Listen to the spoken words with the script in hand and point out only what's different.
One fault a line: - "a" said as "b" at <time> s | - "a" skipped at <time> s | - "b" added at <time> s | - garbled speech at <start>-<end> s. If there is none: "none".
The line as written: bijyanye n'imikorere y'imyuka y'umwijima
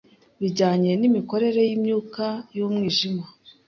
none